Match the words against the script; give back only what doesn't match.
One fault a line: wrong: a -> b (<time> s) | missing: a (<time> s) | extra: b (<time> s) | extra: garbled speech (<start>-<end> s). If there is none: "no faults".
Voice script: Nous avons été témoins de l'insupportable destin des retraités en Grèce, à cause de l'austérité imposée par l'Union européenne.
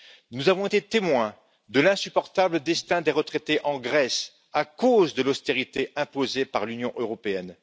no faults